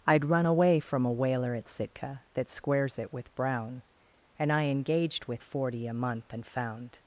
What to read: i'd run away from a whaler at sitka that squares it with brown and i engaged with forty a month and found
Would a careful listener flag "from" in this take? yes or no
no